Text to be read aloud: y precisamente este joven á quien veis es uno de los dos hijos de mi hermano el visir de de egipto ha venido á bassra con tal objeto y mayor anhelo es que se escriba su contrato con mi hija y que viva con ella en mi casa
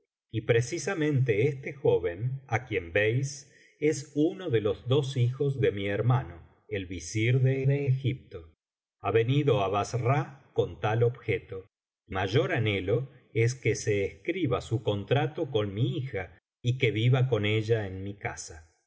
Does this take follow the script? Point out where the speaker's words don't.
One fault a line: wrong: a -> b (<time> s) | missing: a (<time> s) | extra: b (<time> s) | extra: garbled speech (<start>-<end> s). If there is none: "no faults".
no faults